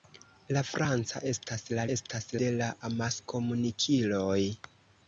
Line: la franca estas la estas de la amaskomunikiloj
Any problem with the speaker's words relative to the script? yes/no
no